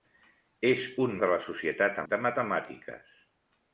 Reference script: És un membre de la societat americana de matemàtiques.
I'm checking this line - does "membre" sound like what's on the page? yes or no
no